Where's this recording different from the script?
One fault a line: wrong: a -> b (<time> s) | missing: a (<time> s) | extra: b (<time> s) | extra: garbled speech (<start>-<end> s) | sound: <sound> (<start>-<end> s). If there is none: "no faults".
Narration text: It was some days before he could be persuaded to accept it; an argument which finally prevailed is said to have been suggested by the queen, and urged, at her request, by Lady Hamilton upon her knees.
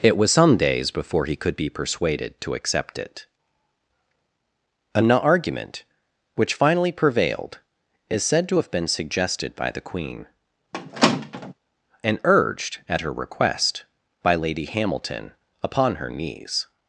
sound: squeak (10.7-11.5 s)